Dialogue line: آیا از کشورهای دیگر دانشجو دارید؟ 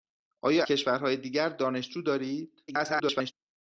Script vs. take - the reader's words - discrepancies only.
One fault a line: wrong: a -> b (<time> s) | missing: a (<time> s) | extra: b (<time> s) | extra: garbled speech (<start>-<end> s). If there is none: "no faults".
missing: از (0.7 s)
extra: garbled speech (2.7-3.3 s)